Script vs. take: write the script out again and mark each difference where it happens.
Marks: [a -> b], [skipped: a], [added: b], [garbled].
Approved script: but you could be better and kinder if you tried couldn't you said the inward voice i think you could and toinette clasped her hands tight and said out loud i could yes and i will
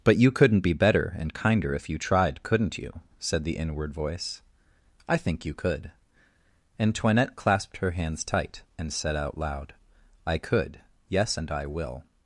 but you [could -> couldn't] be better and kinder if you tried couldn't you said the inward voice i think you could and toinette clasped her hands tight and said out loud i could yes and i will